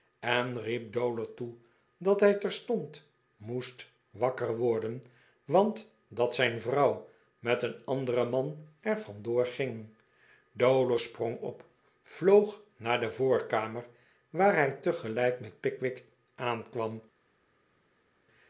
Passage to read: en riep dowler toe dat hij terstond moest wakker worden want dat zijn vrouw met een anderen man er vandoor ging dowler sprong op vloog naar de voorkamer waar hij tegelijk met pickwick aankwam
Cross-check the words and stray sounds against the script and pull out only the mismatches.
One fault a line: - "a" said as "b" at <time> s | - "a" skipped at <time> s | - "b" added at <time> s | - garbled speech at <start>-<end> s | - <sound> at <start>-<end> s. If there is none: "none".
none